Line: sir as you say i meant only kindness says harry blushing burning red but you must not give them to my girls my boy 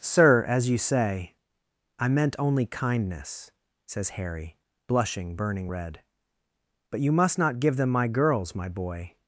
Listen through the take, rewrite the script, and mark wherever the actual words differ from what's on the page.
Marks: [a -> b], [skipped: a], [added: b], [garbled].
sir as you say i meant only kindness says harry blushing burning red but you must not give them [skipped: to] my girls my boy